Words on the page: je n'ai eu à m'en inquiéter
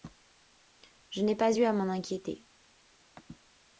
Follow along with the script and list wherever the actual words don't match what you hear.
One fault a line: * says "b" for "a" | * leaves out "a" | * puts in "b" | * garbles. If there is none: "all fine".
* puts in "pas"